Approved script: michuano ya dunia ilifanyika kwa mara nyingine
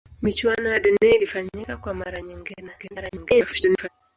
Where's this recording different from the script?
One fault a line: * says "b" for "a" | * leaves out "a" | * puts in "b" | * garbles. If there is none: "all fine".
* garbles